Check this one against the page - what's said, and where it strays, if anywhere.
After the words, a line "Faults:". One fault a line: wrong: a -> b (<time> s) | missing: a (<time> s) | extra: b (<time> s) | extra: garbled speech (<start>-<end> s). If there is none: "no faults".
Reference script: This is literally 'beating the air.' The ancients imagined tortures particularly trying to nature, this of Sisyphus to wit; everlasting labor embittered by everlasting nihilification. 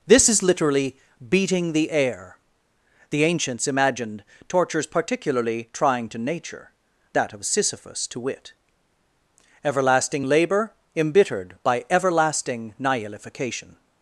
This is literally 'beating the air.' The ancients imagined tortures particularly trying to nature, that of Sisyphus to wit; everlasting labor embittered by everlasting nihilification.
Faults:
wrong: this -> that (7.1 s)